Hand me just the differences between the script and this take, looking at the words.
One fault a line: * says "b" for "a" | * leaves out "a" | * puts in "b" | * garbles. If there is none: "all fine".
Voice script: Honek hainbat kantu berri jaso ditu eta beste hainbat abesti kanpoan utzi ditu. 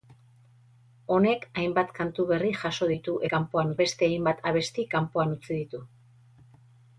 * says "kanpoan" for "eta"